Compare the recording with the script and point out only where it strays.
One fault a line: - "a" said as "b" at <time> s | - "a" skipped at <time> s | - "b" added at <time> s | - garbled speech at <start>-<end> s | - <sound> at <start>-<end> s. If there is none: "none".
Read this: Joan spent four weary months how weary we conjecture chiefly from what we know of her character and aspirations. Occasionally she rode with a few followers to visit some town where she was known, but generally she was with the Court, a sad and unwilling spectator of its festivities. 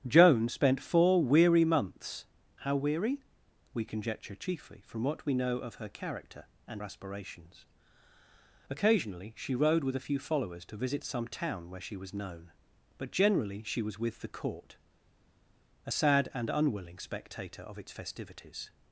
none